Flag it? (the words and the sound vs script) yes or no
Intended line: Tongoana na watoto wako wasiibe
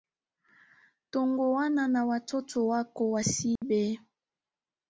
yes